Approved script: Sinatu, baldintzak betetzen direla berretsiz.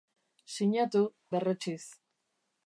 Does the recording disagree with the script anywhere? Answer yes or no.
yes